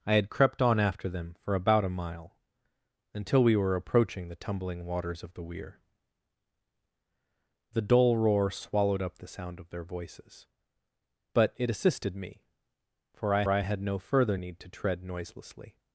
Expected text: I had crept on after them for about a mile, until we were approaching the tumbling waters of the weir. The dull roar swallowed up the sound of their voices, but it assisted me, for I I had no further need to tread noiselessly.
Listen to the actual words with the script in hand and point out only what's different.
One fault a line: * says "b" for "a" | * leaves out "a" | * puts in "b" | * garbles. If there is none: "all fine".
all fine